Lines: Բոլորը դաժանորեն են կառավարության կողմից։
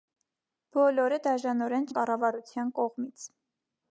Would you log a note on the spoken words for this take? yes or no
no